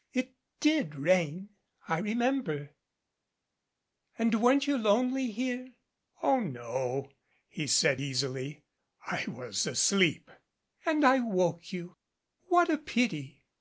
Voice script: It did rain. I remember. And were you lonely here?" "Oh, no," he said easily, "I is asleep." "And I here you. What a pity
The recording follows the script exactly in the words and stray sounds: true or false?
false